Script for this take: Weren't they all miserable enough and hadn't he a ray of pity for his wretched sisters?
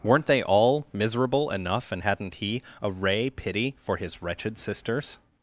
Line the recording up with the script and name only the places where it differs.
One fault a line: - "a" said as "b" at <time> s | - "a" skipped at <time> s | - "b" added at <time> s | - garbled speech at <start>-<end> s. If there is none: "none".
- "of" skipped at 3.3 s